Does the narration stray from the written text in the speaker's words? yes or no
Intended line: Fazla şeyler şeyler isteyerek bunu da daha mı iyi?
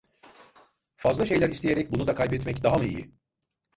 yes